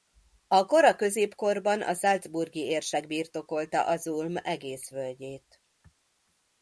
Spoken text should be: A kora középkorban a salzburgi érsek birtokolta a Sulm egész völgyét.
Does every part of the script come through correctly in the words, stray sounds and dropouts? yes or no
yes